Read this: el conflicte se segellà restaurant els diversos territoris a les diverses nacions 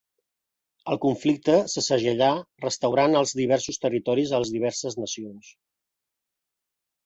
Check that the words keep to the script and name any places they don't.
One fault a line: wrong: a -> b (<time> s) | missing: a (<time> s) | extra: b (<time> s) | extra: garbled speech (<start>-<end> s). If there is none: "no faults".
no faults